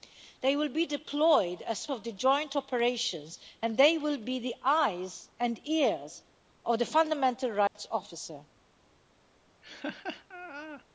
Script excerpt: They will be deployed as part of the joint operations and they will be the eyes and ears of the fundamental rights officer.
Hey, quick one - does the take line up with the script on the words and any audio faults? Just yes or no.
no